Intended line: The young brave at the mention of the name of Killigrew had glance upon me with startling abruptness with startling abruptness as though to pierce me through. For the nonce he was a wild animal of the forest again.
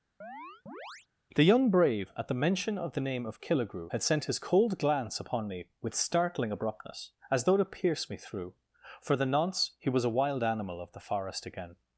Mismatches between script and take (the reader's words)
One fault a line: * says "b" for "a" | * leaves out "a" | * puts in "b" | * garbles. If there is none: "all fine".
* puts in "sent his cold"
* leaves out "with startling abruptness"